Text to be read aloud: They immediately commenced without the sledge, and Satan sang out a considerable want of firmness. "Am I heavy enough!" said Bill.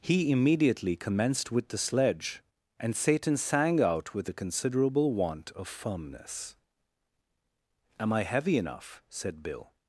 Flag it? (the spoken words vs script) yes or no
yes